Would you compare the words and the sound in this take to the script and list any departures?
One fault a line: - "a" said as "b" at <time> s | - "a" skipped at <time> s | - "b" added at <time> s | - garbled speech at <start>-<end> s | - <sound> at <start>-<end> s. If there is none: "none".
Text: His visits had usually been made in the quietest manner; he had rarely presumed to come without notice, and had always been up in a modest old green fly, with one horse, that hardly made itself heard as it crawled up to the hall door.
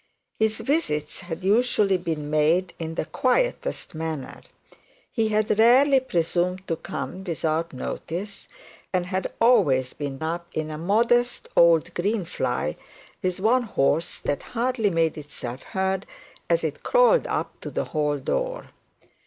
none